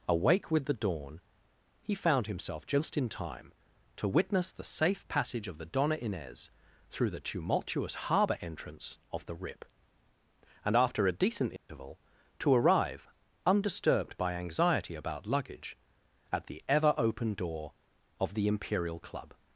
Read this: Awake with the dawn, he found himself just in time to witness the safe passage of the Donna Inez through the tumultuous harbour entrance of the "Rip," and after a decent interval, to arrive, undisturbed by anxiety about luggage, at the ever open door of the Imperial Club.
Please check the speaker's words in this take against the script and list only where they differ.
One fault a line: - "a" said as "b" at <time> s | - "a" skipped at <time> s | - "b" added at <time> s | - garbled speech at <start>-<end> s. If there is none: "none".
none